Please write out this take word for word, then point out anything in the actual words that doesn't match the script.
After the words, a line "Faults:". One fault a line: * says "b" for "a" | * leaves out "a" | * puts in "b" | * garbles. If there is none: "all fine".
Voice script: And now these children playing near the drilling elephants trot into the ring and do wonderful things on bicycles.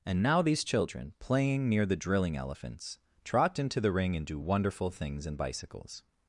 And now these children playing near the drilling elephants trot into the ring and do wonderful things in bicycles.
Faults:
* says "in" for "on"